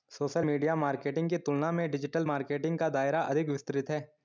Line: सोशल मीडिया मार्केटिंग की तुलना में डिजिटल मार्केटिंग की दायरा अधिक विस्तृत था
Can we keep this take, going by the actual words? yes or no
no